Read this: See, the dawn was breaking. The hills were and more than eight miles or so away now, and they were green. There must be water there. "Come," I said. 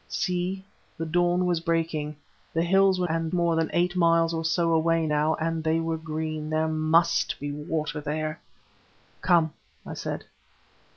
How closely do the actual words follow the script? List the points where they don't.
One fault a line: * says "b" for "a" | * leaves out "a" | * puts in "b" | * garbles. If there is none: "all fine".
all fine